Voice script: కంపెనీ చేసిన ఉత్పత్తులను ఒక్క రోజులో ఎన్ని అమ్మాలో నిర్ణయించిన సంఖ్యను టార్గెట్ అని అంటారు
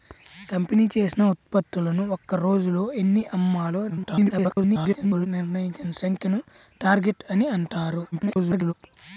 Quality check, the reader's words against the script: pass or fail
fail